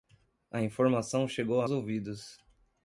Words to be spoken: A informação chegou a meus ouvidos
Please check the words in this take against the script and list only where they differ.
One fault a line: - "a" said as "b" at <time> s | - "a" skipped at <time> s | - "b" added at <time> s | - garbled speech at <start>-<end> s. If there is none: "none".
- "meus" skipped at 1.7 s